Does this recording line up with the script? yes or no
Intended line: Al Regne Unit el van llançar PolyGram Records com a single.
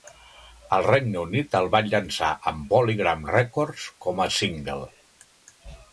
no